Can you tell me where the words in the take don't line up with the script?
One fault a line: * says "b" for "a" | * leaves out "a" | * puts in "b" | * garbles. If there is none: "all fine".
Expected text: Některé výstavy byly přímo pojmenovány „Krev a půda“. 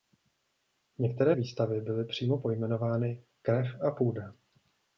all fine